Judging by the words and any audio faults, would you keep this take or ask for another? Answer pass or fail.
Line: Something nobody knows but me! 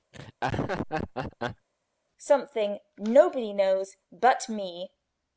fail